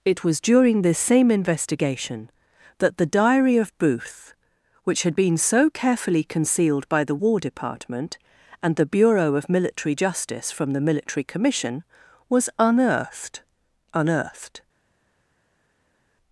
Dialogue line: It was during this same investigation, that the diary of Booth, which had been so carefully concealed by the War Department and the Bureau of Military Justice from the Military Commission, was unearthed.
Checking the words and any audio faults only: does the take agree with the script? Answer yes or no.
no